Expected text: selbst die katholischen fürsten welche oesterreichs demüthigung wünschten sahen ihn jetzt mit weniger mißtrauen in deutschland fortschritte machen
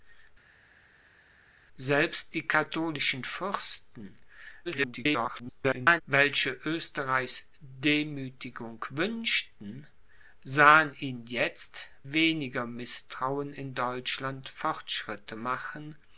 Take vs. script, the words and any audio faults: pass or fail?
fail